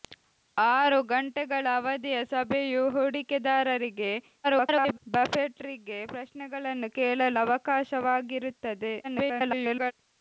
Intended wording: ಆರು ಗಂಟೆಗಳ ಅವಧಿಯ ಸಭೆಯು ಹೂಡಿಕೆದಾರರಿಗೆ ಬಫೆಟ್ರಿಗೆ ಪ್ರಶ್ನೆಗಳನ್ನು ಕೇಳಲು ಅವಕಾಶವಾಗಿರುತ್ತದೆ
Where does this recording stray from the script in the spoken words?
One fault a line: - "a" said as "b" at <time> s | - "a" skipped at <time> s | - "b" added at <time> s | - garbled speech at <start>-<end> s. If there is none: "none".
- garbled speech at 4.4-5.0 s
- garbled speech at 9.0-9.9 s